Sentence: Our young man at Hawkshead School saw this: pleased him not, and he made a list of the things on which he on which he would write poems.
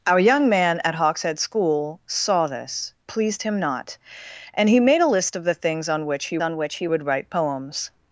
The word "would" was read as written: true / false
true